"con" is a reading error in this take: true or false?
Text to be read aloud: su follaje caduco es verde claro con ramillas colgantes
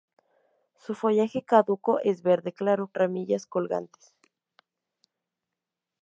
true